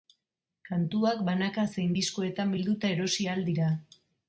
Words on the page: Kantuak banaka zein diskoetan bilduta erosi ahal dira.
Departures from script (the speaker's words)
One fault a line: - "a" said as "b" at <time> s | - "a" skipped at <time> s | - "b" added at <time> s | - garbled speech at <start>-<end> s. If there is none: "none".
none